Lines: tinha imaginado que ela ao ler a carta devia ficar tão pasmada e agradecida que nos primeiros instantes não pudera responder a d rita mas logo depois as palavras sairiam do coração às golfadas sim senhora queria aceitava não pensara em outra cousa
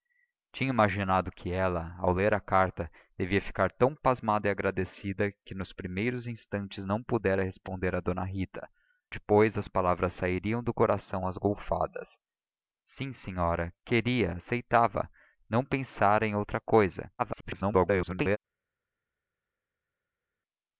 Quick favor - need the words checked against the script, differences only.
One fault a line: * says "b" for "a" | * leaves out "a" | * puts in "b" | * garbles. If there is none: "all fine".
* leaves out "mas logo"
* garbles